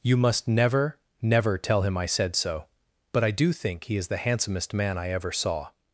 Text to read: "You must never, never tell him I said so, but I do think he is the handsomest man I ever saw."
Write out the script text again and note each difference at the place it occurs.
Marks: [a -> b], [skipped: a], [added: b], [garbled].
"You must never, never tell him I said so, but I do think he is the handsomest man I ever saw."